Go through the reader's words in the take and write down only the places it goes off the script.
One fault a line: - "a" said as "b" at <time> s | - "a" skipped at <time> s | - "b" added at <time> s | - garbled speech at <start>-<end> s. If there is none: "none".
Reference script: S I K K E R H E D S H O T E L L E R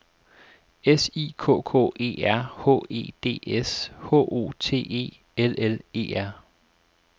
none